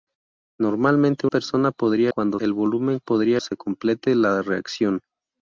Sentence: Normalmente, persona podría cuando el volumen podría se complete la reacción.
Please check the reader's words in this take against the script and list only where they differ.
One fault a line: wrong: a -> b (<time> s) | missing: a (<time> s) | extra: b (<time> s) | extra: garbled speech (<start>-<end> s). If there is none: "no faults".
no faults